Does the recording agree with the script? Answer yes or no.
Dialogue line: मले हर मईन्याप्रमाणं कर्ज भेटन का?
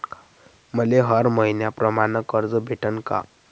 yes